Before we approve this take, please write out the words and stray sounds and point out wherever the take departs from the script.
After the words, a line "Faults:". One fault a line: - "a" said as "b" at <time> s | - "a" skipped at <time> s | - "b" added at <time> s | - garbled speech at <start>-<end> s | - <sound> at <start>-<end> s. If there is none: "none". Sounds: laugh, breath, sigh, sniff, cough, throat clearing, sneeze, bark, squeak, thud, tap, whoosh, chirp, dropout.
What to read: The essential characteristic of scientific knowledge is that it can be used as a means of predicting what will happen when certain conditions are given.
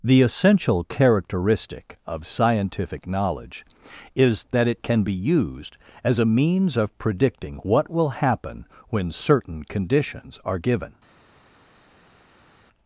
The essential characteristic of scientific knowledge is that it can be used as a means of predicting what will happen when certain conditions are given.
Faults:
none